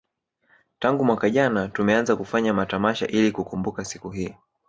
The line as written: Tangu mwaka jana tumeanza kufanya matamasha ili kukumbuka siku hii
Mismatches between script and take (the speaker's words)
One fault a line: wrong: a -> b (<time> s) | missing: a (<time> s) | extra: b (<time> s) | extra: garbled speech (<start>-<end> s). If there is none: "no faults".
no faults